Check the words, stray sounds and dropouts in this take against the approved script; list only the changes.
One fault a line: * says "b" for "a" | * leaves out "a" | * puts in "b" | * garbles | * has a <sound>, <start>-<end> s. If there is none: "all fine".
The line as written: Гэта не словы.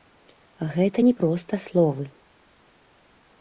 * puts in "проста"